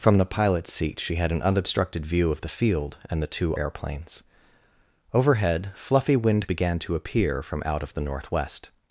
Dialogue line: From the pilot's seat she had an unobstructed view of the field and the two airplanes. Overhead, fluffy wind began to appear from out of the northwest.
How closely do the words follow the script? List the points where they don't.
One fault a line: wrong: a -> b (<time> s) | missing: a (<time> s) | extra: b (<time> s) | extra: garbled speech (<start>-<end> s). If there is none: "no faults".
no faults